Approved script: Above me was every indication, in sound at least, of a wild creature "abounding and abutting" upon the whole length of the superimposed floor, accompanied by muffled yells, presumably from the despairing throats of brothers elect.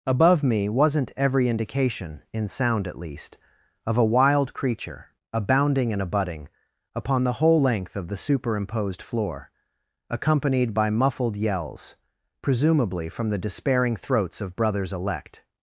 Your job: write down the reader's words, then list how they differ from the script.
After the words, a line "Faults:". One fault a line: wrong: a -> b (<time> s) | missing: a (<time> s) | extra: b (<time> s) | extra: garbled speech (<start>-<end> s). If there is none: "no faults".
Above me wasn't every indication, in sound at least, of a wild creature "abounding and abutting" upon the whole length of the superimposed floor, accompanied by muffled yells, presumably from the despairing throats of brothers elect.
Faults:
wrong: was -> wasn't (0.7 s)